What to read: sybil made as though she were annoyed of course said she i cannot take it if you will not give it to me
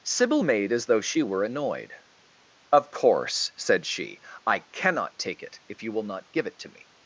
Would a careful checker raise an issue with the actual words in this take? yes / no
no